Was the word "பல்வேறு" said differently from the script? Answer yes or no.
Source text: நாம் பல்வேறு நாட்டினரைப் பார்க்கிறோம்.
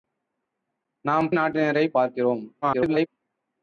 yes